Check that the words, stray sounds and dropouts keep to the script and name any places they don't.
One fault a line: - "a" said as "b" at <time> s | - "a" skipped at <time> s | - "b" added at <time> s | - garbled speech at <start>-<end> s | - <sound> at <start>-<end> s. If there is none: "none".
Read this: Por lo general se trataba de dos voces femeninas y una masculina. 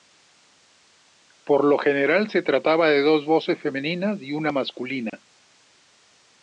- dropout at 5.1-5.1 s